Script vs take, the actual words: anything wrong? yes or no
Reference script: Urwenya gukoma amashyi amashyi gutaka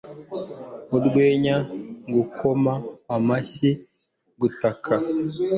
yes